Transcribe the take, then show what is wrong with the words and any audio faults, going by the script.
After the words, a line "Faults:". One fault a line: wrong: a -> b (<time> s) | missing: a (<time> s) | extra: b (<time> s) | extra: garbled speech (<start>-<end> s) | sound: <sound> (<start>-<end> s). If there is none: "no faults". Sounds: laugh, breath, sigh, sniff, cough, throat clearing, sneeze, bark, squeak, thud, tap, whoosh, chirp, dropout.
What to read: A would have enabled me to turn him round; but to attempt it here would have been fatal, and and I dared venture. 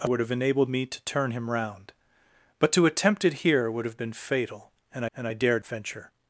A would have enabled me to turn him round; but to attempt it here would have been fatal, and and I dared venture.
Faults:
no faults